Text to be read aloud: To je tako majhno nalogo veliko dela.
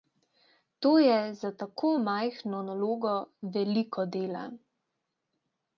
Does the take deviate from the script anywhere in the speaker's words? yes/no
yes